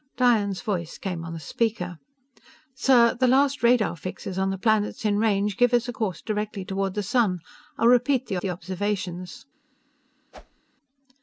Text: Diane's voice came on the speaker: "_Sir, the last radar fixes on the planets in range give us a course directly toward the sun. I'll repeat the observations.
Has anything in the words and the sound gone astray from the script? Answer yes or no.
yes